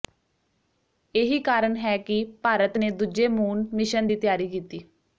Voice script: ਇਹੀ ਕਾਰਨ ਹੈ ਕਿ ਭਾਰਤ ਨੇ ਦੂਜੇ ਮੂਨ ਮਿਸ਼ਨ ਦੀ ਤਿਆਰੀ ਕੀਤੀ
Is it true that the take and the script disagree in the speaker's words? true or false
false